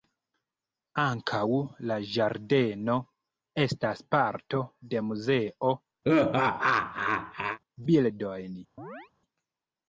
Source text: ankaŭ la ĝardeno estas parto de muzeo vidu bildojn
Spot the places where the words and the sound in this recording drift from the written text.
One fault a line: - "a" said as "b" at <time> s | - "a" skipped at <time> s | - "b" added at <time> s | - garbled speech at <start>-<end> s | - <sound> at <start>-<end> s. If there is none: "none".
- "vidu" skipped at 5.8 s
- laugh at 6.0-7.6 s
- chirp at 8.8-9.1 s